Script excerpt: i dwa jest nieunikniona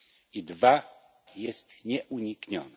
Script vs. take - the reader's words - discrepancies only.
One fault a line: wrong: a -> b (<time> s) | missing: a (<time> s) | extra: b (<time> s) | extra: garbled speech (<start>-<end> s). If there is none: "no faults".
no faults